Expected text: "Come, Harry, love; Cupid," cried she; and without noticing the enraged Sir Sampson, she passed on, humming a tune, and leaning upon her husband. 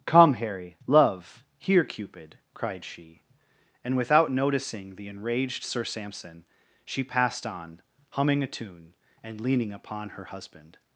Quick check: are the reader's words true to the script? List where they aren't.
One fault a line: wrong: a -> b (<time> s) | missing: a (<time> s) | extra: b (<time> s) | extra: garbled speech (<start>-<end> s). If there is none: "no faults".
extra: here (1.6 s)